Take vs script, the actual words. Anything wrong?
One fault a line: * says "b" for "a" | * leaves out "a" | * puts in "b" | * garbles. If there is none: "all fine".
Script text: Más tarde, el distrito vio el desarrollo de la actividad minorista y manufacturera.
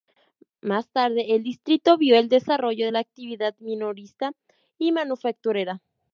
all fine